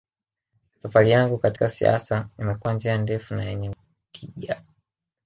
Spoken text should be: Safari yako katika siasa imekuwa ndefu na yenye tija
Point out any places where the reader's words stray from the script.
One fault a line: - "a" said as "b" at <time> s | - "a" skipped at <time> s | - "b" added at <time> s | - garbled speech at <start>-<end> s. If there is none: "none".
- "yako" said as "yangu" at 1.1 s
- "njia" added at 2.7 s